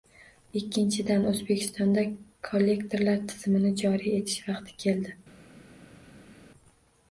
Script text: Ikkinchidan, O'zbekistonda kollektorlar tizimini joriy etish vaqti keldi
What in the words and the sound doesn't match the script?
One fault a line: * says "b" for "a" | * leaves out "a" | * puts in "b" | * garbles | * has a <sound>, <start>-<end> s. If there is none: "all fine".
all fine